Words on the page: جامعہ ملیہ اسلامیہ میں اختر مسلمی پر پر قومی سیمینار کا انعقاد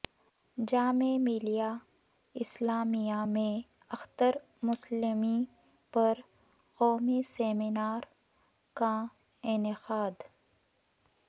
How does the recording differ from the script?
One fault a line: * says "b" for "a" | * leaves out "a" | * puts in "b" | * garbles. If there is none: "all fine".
* leaves out "پر"